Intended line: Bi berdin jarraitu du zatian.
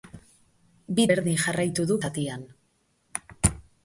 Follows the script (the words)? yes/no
yes